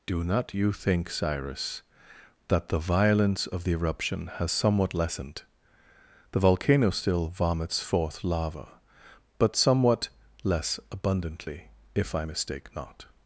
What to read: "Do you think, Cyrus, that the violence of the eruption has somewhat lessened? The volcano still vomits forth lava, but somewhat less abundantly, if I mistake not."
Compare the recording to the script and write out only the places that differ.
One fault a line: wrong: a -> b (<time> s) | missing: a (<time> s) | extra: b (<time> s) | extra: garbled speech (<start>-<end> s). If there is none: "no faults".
extra: not (0.2 s)